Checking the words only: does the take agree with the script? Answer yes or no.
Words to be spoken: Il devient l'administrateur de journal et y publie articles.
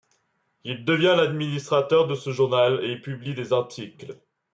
no